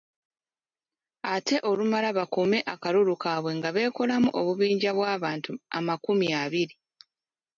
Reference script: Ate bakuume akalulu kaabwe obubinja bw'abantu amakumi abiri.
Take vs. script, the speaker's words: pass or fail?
fail